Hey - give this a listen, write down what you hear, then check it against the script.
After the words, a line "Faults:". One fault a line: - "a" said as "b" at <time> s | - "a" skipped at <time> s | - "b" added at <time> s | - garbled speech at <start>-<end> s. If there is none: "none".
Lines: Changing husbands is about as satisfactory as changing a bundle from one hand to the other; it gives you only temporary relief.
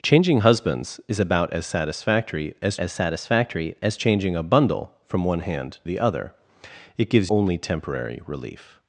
Changing husbands is about as satisfactory as as satisfactory as changing a bundle from one hand the other; it gives only temporary relief.
Faults:
- "as satisfactory as" added at 2.8 s
- "to" skipped at 5.8 s
- "you" skipped at 7.3 s